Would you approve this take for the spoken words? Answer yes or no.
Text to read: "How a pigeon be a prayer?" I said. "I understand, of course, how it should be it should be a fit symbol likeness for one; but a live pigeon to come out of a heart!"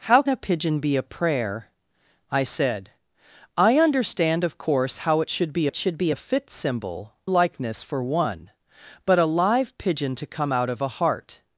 yes